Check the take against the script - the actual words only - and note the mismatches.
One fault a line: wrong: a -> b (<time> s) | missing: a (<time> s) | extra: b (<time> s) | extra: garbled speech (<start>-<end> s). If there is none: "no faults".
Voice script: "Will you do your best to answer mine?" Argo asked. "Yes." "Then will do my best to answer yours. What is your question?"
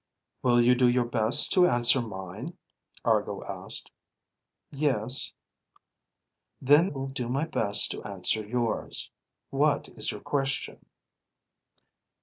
no faults